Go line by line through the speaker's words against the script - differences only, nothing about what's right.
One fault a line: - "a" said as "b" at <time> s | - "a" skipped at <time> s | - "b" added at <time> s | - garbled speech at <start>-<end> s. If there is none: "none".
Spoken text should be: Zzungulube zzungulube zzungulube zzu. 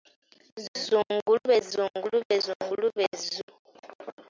none